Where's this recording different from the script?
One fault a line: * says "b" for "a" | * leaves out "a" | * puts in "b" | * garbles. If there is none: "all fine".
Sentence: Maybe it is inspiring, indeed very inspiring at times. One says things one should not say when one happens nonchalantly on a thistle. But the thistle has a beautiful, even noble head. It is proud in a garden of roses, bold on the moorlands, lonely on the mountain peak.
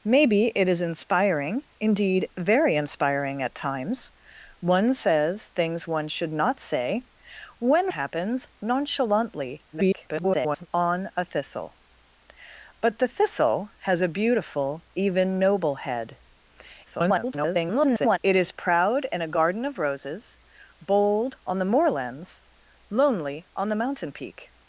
* leaves out "one"
* garbles
* garbles